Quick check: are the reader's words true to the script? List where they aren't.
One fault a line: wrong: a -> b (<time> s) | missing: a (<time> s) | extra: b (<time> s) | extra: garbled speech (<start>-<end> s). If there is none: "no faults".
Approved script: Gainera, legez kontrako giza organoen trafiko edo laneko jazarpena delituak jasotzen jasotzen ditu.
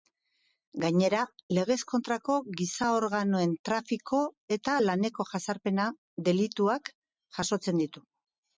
wrong: edo -> eta (4.6 s)
missing: jasotzen (7.8 s)